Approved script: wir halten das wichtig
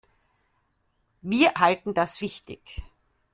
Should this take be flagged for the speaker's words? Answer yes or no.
no